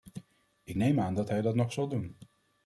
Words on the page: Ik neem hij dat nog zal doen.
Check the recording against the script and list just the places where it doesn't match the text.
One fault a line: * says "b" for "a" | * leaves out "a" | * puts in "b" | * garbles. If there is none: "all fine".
* puts in "aan dat"